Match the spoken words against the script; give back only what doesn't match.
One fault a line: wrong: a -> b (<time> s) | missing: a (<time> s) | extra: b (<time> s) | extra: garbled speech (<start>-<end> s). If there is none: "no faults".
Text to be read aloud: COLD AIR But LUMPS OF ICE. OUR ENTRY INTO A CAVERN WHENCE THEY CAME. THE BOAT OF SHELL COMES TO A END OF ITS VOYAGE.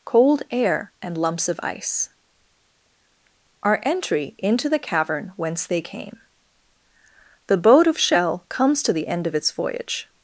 wrong: But -> AND (1.0 s)
wrong: A -> THE (4.7 s)
wrong: A -> THE (8.9 s)